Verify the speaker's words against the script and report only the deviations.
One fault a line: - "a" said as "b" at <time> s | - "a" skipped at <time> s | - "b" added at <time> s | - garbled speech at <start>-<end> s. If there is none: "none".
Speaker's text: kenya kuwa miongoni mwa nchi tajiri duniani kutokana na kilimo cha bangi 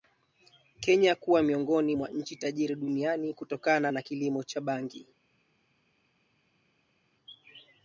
none